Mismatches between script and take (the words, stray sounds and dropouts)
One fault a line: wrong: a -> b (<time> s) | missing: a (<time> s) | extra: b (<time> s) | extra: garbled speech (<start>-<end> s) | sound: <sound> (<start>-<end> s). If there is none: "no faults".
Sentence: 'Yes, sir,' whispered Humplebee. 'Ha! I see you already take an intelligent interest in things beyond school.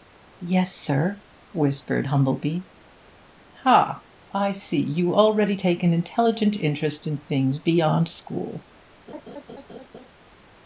sound: laugh (9.1-10.1 s)